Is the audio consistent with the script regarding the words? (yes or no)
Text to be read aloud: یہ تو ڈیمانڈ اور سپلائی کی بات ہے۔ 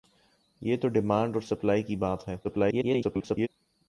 no